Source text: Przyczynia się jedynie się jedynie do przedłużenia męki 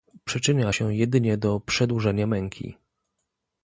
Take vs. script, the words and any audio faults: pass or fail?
fail